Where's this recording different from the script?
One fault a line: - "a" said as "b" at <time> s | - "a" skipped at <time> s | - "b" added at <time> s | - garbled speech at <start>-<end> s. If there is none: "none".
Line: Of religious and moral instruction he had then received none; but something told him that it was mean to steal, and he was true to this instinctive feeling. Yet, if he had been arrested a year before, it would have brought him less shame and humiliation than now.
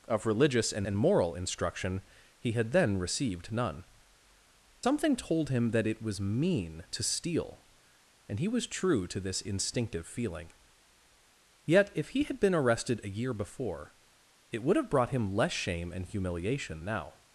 - "and" added at 0.8 s
- "but" skipped at 3.8 s
- "than" skipped at 16.8 s